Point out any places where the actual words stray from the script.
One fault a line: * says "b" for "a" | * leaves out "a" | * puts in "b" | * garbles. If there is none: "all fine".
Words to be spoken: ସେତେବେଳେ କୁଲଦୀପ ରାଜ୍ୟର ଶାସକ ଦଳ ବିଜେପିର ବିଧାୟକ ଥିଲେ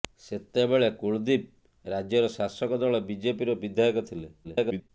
* garbles